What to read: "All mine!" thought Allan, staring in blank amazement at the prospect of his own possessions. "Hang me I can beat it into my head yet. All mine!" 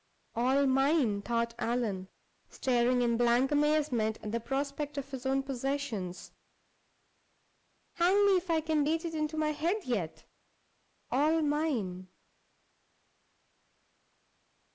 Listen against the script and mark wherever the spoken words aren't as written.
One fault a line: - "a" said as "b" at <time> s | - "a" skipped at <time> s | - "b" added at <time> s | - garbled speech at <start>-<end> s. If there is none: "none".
- "if" added at 8.4 s